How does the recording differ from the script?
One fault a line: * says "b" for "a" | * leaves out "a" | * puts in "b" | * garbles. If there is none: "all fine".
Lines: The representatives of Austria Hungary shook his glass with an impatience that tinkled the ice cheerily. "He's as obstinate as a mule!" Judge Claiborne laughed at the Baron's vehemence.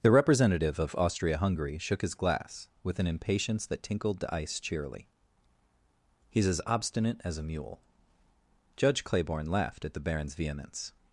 * says "representative" for "representatives"